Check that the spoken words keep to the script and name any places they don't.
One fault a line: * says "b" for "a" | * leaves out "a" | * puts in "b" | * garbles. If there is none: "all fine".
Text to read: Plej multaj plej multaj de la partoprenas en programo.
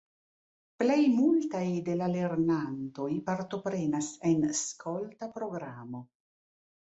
* leaves out "plej multaj"
* puts in "lernantoj"
* puts in "skolta"